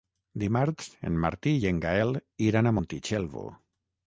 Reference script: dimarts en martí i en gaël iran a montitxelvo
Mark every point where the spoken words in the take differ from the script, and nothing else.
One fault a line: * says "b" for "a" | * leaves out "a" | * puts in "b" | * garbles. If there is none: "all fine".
all fine